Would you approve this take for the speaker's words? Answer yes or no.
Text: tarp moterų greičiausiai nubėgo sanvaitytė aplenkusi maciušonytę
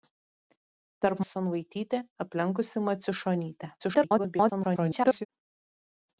no